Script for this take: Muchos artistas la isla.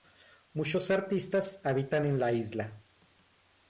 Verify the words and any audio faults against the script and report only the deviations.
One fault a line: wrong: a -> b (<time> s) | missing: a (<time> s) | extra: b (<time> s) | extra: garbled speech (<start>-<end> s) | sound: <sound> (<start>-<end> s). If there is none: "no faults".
extra: habitan en (1.6 s)